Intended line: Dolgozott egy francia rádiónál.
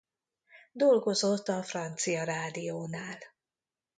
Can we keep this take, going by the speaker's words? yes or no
no